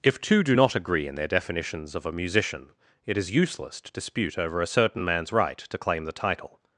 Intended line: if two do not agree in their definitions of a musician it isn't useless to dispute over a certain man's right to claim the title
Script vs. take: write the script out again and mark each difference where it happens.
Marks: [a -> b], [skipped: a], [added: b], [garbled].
if two do not agree in their definitions of a musician it [isn't -> is] useless to dispute over a certain man's right to claim the title